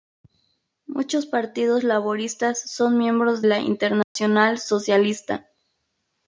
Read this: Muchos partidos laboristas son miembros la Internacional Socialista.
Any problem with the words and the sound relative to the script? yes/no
yes